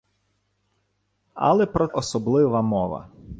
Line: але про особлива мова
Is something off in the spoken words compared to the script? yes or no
no